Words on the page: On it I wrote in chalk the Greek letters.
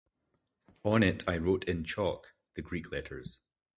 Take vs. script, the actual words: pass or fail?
pass